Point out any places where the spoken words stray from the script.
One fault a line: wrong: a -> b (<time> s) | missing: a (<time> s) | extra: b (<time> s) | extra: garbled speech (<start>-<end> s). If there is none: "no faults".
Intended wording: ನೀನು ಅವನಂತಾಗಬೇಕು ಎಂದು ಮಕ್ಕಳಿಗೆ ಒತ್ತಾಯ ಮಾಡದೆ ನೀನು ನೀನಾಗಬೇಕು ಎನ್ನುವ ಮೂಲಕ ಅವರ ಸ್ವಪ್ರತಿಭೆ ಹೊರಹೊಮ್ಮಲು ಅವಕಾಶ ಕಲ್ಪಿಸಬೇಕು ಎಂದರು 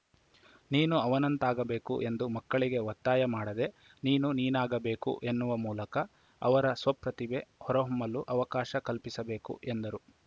no faults